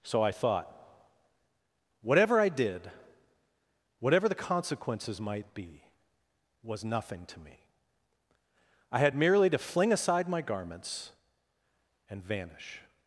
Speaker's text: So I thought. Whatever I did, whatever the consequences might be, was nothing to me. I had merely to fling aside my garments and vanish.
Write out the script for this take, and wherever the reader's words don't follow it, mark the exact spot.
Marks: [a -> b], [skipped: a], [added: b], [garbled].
So I thought. Whatever I did, whatever the consequences might be, was nothing to me. I had merely to fling aside my garments and vanish.